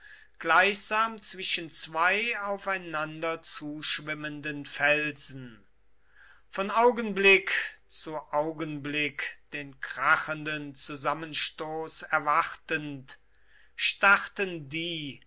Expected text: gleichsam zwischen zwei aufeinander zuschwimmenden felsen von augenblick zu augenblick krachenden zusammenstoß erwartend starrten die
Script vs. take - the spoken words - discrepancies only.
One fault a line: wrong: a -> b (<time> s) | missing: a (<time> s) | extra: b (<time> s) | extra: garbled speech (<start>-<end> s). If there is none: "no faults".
extra: den (9.5 s)